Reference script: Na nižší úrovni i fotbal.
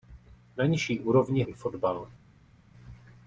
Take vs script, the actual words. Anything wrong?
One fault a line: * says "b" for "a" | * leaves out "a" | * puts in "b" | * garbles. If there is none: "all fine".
all fine